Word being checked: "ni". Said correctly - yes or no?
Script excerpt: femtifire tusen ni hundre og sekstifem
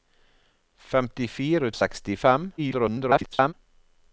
no